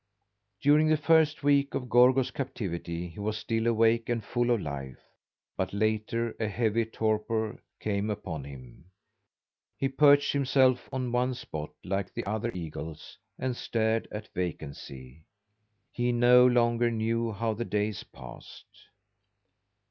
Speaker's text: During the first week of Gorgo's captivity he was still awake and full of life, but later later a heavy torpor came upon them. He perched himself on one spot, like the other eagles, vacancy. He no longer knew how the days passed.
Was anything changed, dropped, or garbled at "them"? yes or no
yes